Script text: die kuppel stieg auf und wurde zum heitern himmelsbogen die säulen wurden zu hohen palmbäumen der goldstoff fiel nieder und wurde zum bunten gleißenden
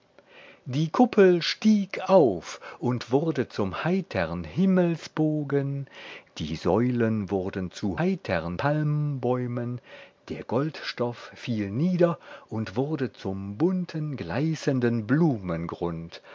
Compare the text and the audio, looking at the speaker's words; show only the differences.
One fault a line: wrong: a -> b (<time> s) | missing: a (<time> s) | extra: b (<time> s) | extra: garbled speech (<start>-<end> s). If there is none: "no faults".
wrong: hohen -> heitern (8.0 s)